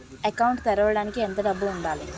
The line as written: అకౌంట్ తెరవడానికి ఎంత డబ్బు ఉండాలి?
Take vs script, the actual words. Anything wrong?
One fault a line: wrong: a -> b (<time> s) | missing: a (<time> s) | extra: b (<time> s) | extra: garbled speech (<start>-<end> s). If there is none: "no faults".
no faults